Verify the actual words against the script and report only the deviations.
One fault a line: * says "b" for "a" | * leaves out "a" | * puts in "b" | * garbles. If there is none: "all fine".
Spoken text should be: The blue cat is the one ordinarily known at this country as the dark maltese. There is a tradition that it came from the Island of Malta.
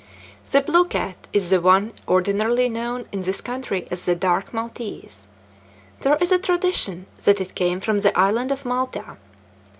* says "in" for "at"